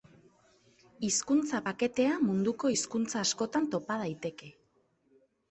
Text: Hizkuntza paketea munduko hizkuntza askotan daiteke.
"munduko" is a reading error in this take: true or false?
false